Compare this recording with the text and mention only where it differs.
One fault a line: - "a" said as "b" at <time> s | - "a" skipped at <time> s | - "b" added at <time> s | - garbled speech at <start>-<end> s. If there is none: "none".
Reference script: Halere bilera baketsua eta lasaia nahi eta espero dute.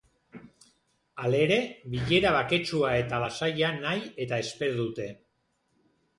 none